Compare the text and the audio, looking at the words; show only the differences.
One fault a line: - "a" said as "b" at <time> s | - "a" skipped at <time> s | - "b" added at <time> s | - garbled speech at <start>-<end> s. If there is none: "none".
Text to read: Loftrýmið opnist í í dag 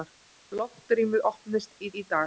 none